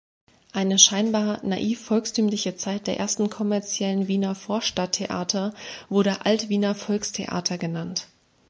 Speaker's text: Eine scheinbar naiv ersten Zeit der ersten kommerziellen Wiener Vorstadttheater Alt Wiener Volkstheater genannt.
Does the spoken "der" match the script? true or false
true